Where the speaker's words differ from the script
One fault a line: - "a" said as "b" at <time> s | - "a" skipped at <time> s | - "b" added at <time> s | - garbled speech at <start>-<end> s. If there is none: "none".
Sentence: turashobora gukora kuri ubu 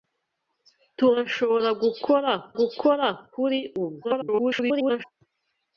- "gukora" added at 2.6 s
- garbled speech at 4.0-5.0 s